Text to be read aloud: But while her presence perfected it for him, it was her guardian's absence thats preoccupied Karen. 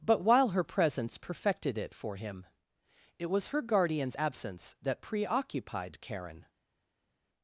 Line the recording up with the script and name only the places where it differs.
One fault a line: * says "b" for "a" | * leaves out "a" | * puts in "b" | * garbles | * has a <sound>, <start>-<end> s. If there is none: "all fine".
* says "that" for "thats"